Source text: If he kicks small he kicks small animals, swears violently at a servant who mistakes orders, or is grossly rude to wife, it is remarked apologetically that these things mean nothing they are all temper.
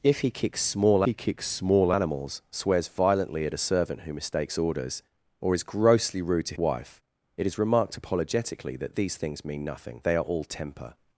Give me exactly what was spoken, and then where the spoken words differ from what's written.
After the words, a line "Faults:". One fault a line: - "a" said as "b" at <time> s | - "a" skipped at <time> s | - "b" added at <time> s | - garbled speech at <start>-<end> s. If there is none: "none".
If he kicks small he kicks small animals, swears violently at a servant who mistakes orders, or is grossly rude to wife, it is remarked apologetically that these things mean nothing they are all temper.
Faults:
none